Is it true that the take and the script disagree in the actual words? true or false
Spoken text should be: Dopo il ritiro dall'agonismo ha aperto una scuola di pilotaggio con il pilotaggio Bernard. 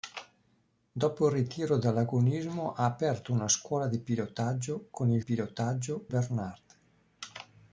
false